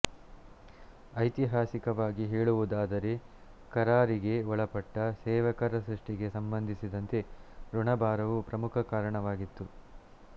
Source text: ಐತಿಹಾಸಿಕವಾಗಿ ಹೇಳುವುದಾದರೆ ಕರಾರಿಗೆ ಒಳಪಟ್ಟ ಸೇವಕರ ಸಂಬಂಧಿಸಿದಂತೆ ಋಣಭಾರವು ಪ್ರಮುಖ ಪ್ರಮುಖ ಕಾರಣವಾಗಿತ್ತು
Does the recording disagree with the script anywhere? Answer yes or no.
yes